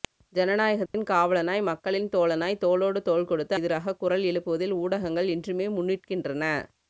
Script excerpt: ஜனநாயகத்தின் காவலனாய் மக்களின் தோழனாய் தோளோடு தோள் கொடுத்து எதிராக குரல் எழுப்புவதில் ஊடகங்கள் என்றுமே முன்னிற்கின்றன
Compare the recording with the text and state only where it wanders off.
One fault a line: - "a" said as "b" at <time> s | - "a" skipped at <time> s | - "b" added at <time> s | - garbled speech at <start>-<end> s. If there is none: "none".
none